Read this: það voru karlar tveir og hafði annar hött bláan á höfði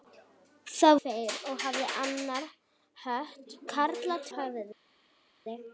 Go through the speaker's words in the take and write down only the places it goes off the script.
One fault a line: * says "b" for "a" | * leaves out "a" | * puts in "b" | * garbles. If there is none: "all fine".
* leaves out "voru karlar"
* says "karlar" for "bláan"